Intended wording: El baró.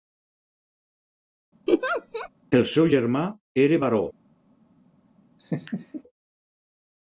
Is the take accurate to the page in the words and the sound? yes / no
no